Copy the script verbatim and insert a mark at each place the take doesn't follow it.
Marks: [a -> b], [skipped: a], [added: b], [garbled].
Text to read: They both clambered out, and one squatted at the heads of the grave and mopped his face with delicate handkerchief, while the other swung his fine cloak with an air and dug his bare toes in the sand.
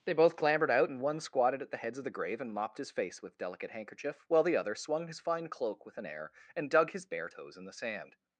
They both clambered out, and one squatted at the heads of the grave and mopped his face with delicate handkerchief, while the other swung his fine cloak with an air and dug his bare toes in the sand.